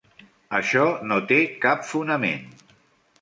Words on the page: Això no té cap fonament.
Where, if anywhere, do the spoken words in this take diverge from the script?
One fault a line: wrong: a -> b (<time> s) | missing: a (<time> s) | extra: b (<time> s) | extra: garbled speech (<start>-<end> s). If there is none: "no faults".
no faults